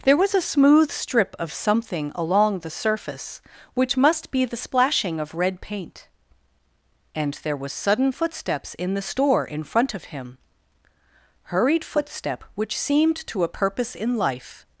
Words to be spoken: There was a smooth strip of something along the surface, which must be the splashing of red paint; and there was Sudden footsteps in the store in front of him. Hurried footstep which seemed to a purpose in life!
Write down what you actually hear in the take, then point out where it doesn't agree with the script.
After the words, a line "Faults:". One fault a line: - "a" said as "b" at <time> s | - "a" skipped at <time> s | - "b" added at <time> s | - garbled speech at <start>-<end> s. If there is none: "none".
There was a smooth strip of something along the surface, which must be the splashing of red paint; and there was Sudden footsteps in the store in front of him. Hurried footstep which seemed to a purpose in life!
Faults:
none